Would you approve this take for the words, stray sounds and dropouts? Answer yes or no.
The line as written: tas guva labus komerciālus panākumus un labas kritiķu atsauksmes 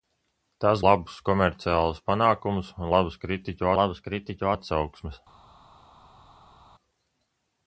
no